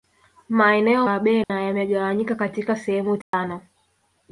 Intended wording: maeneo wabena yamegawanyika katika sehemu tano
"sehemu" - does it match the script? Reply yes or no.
yes